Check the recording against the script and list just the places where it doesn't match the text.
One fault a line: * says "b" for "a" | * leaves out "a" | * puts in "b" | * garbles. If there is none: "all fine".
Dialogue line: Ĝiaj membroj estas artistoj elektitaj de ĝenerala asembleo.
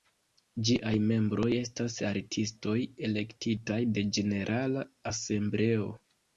all fine